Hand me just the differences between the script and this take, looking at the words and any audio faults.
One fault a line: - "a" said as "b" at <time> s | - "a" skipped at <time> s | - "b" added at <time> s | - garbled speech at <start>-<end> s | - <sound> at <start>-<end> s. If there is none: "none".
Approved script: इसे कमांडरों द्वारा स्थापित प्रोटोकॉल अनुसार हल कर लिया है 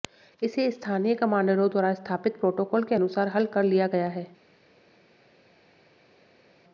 - "स्थानीय" added at 0.7 s
- "के" added at 2.8 s
- "गया" added at 3.9 s